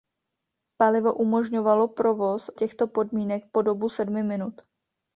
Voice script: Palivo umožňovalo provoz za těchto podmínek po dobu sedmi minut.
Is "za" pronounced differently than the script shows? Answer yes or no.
yes